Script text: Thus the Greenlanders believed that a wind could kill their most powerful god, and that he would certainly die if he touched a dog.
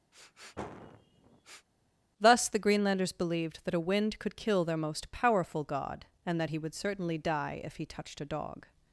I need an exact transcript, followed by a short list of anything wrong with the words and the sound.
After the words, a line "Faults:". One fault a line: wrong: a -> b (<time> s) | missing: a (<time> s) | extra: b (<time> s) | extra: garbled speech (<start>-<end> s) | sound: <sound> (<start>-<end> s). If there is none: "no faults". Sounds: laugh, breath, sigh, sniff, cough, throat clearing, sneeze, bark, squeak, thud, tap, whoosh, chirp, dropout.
Thus the Greenlanders believed that a wind could kill their most powerful god, and that he would certainly die if he touched a dog.
Faults:
sound: sniff (0.1-1.7 s)